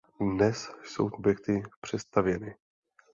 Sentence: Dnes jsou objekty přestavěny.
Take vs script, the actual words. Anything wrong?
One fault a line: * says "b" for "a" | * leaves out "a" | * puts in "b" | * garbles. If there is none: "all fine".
all fine